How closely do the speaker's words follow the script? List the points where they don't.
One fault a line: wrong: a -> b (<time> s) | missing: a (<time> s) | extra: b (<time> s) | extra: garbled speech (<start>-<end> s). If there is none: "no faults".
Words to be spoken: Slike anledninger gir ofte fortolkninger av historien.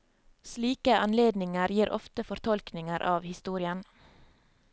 no faults